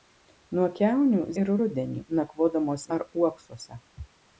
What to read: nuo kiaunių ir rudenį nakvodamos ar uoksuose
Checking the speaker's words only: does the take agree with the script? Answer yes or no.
yes